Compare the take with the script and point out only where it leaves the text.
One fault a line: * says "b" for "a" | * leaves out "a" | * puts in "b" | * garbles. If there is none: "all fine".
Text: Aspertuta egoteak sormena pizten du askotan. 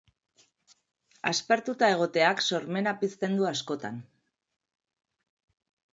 all fine